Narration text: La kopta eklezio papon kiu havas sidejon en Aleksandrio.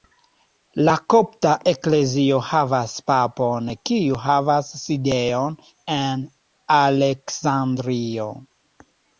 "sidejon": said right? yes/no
yes